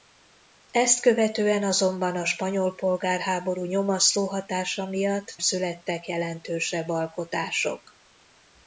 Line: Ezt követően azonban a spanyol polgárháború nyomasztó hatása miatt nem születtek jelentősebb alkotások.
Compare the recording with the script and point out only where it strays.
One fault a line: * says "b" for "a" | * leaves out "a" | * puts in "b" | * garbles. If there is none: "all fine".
* leaves out "nem"